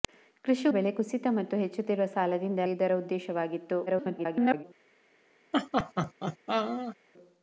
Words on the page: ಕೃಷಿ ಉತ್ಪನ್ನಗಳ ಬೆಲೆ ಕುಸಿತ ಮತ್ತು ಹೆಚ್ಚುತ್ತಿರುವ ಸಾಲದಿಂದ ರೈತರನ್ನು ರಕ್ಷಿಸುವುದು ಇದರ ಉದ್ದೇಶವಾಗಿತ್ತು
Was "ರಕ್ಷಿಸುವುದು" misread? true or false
true